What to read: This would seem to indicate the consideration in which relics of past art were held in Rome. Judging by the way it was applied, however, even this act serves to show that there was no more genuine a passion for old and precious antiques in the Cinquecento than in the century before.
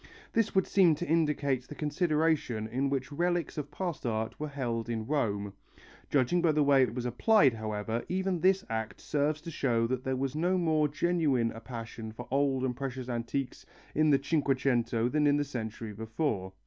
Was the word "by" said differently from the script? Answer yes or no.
no